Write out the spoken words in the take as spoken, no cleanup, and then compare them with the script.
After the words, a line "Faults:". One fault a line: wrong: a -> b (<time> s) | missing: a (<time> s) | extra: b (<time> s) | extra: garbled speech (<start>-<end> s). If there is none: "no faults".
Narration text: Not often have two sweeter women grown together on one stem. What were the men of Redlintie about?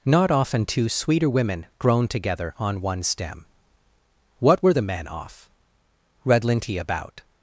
Not often two sweeter women grown together on one stem. What were the men off Redlintie about?
Faults:
missing: have (0.7 s)
wrong: of -> off (5.1 s)